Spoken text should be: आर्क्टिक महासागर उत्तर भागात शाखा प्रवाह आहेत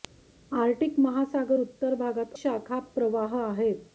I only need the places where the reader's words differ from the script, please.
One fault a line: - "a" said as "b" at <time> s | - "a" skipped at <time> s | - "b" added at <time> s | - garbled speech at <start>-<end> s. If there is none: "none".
none